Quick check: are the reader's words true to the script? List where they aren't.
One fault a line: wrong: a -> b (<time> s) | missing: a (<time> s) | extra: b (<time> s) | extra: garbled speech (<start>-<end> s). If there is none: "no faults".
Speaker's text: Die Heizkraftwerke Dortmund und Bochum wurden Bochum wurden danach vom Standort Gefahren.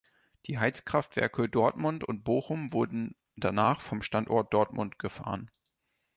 missing: Bochum wurden (3.2 s)
extra: Dortmund (4.5 s)